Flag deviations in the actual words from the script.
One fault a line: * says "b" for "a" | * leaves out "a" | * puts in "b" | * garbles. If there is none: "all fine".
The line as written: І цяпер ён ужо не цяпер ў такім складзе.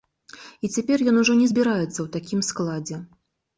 * says "збіраецца" for "цяпер"